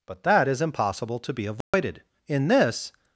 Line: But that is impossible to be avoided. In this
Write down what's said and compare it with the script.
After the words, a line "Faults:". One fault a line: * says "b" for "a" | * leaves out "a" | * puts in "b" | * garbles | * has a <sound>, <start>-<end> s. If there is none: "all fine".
But that is impossible to be avoided. In this
Faults:
* has a dropout, 1.6-1.7 s